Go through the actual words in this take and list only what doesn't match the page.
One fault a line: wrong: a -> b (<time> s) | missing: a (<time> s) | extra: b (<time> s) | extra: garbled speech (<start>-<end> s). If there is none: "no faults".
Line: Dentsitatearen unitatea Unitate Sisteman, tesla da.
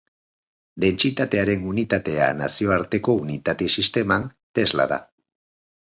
extra: Nazioarteko (2.4 s)